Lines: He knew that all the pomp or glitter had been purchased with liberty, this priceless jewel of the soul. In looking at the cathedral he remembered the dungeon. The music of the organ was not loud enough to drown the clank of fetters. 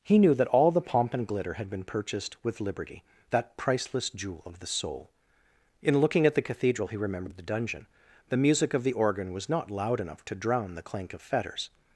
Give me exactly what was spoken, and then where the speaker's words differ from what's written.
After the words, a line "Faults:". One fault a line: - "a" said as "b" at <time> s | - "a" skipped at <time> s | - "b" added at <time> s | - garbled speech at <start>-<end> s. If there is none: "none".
He knew that all the pomp and glitter had been purchased with liberty, that priceless jewel of the soul. In looking at the cathedral he remembered the dungeon. The music of the organ was not loud enough to drown the clank of fetters.
Faults:
- "or" said as "and" at 1.1 s
- "this" said as "that" at 3.3 s